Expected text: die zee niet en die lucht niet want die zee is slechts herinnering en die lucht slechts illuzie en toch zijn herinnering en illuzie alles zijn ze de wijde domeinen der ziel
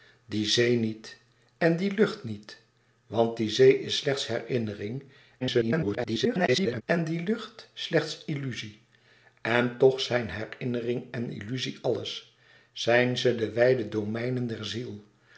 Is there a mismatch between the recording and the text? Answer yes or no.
yes